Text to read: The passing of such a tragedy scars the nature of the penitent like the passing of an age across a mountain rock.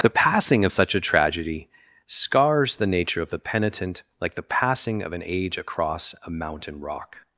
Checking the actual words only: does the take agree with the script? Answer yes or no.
yes